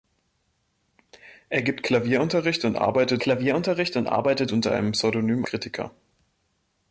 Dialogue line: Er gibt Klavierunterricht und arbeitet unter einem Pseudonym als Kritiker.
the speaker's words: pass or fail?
fail